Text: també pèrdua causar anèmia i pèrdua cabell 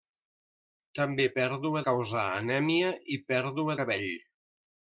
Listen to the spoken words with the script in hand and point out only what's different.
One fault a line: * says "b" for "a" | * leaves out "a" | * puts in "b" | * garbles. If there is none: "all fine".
all fine